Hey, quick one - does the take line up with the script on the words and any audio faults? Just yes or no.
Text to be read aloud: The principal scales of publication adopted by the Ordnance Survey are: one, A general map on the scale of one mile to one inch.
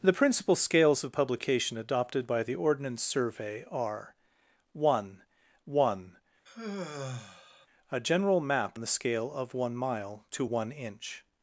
no